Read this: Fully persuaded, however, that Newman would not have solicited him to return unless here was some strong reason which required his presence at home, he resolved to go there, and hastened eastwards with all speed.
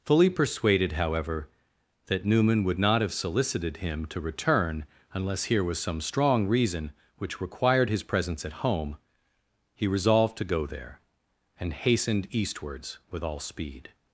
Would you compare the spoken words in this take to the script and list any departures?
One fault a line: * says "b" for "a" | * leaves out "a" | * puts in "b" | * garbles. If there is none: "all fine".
all fine